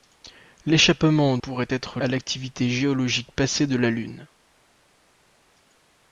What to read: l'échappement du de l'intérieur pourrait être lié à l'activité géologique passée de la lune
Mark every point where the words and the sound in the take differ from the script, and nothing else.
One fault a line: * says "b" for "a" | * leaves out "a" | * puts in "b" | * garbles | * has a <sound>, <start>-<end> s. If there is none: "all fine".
* leaves out "du de l'intérieur"
* leaves out "lié"